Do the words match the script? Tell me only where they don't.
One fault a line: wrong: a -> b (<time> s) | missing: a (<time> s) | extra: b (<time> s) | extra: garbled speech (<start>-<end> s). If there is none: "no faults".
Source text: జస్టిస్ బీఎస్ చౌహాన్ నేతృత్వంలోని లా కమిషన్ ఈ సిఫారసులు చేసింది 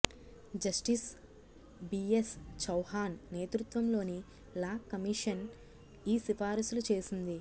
no faults